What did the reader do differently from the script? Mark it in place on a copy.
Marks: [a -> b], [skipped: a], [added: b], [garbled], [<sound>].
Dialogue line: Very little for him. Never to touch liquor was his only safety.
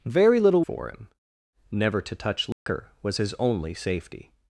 Very little for him. Never to touch liquor [dropout] was his only safety.